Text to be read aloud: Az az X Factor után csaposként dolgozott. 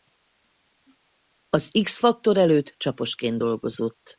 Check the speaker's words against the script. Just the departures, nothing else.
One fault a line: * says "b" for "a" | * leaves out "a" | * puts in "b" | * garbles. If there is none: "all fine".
* leaves out "az"
* says "előtt" for "után"